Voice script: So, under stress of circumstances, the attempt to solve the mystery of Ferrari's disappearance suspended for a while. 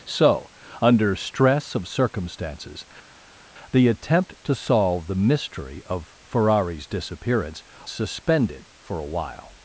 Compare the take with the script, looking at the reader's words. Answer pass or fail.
pass